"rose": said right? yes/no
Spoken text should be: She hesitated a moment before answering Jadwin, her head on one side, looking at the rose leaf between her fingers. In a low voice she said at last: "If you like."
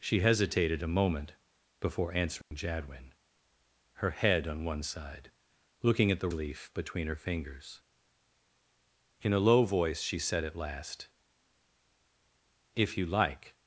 no